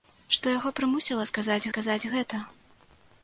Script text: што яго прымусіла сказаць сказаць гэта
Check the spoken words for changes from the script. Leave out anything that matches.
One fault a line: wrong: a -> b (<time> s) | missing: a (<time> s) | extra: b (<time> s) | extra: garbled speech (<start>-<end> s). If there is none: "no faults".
no faults